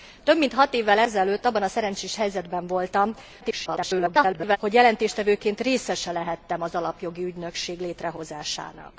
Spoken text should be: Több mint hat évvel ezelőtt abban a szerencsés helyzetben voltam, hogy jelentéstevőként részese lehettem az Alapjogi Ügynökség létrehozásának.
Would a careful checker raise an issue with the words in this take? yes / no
yes